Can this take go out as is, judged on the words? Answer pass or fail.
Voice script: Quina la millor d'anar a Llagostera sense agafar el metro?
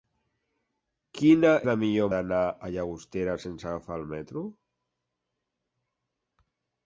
pass